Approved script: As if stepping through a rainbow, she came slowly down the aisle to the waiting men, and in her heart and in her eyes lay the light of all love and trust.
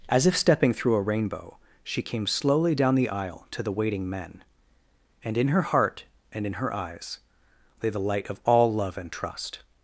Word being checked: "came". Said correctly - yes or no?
yes